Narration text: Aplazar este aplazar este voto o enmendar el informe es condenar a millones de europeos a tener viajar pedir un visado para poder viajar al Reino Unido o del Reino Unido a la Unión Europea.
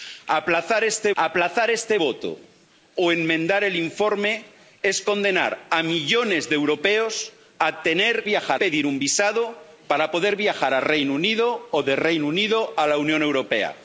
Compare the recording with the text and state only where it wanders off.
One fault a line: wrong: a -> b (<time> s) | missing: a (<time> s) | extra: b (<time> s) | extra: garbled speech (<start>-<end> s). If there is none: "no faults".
no faults